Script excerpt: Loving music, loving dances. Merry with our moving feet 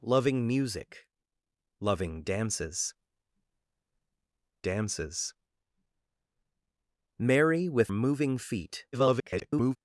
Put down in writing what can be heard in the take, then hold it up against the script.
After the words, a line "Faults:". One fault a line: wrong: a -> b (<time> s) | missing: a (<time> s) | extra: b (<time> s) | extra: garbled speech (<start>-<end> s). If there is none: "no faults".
Loving music, loving dances dances. Merry with moving feet [garbled]
Faults:
extra: dances (4.6 s)
missing: our (7.9 s)
extra: garbled speech (8.9-9.8 s)